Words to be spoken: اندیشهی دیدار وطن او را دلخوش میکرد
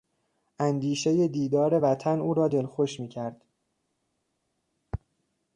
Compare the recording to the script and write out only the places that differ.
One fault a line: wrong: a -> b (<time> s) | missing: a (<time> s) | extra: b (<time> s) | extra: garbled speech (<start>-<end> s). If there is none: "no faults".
no faults